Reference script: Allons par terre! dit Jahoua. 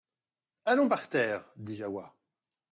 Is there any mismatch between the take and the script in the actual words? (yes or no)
no